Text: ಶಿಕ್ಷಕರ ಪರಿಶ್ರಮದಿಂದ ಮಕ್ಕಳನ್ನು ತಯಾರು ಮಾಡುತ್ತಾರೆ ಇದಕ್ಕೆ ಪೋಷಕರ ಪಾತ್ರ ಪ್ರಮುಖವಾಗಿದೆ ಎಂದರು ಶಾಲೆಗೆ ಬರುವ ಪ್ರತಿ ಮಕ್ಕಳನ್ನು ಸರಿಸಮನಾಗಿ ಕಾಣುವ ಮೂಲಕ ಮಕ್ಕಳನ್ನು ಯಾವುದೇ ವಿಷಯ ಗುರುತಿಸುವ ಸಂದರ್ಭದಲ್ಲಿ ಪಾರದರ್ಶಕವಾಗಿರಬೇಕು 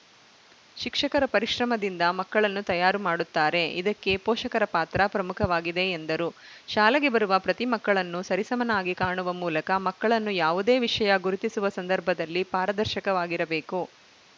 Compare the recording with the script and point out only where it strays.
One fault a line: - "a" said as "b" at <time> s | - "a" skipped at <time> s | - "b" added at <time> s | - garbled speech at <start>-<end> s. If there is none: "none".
none